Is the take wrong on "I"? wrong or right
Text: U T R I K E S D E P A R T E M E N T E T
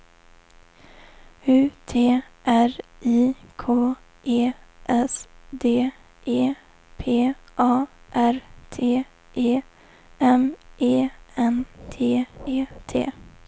right